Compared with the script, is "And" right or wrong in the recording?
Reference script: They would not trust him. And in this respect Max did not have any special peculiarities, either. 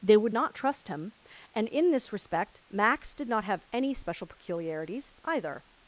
right